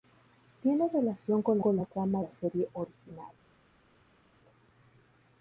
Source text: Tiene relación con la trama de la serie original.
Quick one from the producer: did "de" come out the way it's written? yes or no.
no